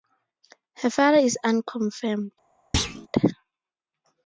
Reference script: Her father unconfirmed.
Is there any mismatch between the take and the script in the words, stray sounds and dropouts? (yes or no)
yes